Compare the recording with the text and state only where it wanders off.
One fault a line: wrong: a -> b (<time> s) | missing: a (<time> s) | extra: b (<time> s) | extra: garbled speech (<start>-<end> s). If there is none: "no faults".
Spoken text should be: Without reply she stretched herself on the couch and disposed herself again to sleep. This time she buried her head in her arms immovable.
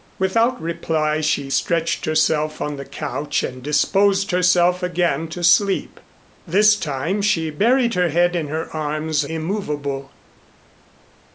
no faults